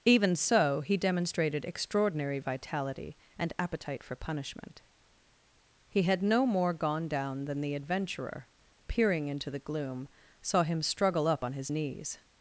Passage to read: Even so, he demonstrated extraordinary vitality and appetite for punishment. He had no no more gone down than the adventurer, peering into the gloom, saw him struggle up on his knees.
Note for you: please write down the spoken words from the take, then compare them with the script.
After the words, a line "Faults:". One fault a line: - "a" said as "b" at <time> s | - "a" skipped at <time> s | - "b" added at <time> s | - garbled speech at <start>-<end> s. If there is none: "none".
Even so, he demonstrated extraordinary vitality and appetite for punishment. He had no more gone down than the adventurer, peering into the gloom, saw him struggle up on his knees.
Faults:
- "no" skipped at 6.5 s